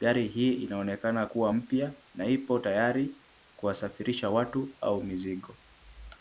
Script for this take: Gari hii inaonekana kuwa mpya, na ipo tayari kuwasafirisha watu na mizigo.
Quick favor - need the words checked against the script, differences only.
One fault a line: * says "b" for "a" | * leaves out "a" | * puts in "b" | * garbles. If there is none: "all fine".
* says "au" for "na"